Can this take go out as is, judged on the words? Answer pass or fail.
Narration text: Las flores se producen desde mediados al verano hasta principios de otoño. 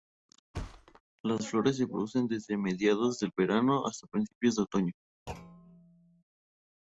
fail